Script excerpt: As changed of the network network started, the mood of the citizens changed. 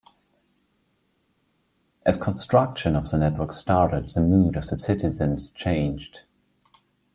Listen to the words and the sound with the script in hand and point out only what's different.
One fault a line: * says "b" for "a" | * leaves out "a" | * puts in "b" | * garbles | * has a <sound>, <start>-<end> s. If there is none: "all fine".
* says "construction" for "changed"
* leaves out "network"